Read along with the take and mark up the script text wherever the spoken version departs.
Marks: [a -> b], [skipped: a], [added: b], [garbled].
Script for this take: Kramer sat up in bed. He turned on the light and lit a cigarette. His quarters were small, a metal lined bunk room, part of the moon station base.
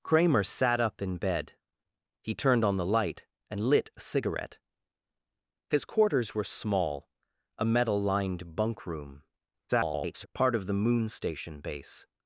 Kramer sat up in bed. He turned on the light and lit a cigarette. His quarters were small, a metal lined bunk room, [garbled] part of the moon station base.